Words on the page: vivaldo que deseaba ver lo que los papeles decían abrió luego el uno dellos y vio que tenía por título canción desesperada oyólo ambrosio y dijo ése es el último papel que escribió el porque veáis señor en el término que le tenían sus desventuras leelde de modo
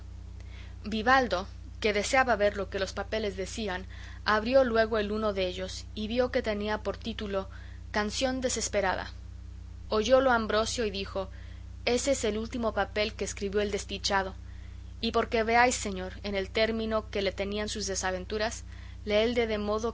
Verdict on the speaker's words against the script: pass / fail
fail